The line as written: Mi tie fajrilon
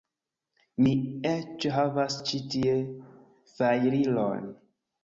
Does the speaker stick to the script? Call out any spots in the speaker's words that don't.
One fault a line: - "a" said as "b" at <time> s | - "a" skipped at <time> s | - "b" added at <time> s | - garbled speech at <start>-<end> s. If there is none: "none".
- "eĉ havas ĉi" added at 1.3 s